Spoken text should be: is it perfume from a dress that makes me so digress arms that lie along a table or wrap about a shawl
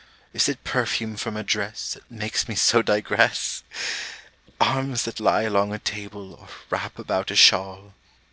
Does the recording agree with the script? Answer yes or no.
yes